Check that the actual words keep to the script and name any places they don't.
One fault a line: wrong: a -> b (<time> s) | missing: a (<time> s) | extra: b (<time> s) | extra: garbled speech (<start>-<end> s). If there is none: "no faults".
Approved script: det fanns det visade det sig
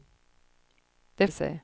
missing: fanns det visade (1.3 s)